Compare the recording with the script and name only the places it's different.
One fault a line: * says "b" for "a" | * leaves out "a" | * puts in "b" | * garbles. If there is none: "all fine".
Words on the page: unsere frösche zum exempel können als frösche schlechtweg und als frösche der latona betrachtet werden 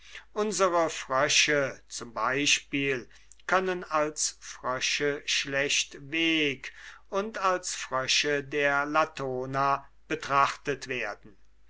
all fine